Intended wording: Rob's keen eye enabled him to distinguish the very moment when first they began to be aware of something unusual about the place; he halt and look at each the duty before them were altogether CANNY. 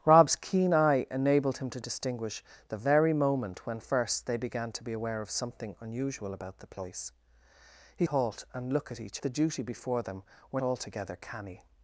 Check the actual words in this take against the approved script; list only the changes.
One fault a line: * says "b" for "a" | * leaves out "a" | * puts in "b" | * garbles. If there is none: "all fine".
all fine